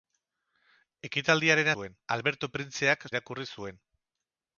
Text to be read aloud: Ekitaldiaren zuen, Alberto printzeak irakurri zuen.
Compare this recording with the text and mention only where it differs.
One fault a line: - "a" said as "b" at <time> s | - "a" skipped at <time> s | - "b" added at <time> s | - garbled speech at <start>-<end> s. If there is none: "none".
none